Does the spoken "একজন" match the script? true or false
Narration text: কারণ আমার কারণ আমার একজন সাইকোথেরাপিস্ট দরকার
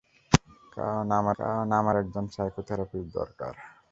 true